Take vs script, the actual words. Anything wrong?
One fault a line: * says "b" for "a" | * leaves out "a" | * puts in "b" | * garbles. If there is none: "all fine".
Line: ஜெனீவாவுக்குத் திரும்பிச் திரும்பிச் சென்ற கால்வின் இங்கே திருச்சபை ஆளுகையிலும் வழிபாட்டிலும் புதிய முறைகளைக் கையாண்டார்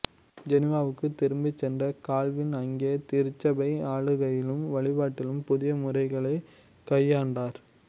* leaves out "திரும்பிச்"
* says "அங்கே" for "இங்கே"